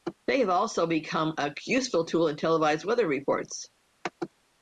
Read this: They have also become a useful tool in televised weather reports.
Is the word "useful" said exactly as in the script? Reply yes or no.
yes